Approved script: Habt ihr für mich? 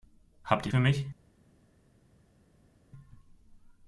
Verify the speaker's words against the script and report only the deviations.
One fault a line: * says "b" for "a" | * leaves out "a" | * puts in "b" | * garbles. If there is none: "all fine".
all fine